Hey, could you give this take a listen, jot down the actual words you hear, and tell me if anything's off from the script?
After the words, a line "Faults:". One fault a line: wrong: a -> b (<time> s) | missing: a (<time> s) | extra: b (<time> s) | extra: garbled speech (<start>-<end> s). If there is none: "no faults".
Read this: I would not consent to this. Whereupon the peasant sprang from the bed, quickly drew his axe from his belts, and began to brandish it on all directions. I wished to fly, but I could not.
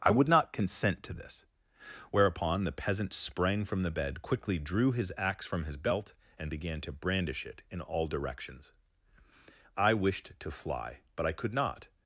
I would not consent to this. Whereupon the peasant sprang from the bed, quickly drew his axe from his belt, and began to brandish it in all directions. I wished to fly, but I could not.
Faults:
wrong: belts -> belt (5.8 s)
wrong: on -> in (7.7 s)